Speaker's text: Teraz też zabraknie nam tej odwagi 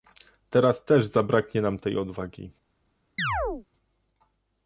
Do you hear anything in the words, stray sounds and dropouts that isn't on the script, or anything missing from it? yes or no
yes